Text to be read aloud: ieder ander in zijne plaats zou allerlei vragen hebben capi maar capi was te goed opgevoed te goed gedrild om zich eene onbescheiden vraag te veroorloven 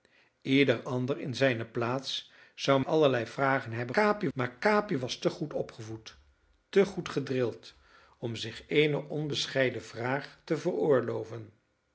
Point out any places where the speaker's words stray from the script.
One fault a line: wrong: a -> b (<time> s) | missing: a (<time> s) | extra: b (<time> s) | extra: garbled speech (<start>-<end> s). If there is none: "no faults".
no faults